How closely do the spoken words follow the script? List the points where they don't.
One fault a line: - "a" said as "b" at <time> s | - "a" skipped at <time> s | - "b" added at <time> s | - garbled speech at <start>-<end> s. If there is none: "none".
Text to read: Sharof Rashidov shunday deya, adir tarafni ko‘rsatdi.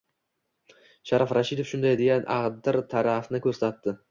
none